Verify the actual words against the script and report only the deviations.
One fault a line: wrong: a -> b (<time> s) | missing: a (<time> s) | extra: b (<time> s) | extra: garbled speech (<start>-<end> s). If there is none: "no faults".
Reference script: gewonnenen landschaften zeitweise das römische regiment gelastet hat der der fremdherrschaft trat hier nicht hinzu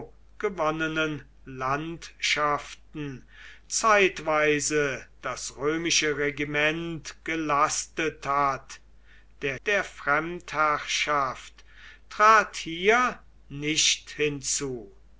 no faults